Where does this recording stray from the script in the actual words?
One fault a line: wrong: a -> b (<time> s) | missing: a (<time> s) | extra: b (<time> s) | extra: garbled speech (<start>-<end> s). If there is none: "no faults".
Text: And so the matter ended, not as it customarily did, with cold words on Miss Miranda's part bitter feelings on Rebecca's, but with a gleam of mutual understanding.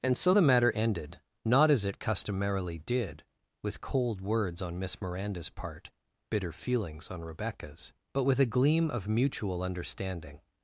no faults